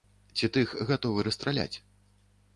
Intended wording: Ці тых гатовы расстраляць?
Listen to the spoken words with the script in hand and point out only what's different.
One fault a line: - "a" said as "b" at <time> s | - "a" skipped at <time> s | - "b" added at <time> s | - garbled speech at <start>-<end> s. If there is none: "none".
none